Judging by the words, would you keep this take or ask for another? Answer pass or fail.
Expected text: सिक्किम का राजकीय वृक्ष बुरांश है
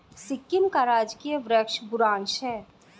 pass